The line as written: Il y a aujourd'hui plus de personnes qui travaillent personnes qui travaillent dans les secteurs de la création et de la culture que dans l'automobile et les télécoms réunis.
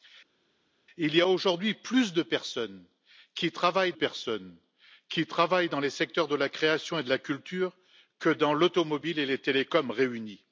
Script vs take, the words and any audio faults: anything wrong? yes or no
no